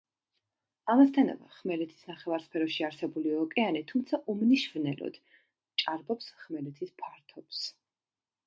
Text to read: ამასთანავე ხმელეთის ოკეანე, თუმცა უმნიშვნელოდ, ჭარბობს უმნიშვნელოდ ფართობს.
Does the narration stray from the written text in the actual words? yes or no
yes